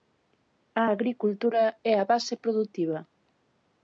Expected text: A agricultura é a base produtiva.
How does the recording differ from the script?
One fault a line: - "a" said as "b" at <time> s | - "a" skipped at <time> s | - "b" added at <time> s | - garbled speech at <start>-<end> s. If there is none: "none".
none